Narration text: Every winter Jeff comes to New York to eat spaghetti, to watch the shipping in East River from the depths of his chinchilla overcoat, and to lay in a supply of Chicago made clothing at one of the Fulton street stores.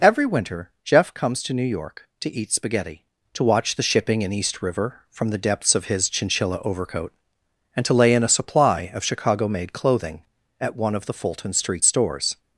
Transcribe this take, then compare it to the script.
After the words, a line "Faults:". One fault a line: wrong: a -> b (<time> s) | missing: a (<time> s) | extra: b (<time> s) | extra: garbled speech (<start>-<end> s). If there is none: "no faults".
Every winter Jeff comes to New York to eat spaghetti, to watch the shipping in East River from the depths of his chinchilla overcoat, and to lay in a supply of Chicago made clothing at one of the Fulton street stores.
Faults:
no faults